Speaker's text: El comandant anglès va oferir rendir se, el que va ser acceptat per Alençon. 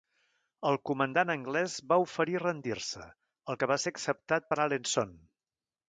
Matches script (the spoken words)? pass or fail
pass